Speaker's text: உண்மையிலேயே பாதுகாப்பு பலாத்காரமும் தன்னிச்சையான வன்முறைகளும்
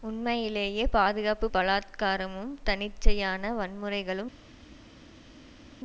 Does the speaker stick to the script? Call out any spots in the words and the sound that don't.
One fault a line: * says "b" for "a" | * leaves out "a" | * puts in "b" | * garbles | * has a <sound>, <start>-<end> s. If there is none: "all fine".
all fine